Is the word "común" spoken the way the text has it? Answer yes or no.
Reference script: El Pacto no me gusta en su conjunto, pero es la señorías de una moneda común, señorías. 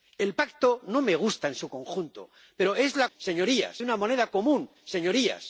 yes